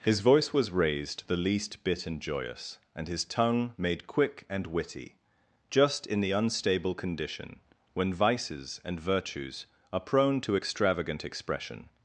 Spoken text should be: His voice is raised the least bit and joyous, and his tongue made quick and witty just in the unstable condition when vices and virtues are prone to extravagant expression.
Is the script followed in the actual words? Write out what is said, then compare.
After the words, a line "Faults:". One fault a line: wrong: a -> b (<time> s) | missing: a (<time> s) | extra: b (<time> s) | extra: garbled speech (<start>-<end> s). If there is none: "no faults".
His voice was raised the least bit and joyous, and his tongue made quick and witty just in the unstable condition when vices and virtues are prone to extravagant expression.
Faults:
wrong: is -> was (0.5 s)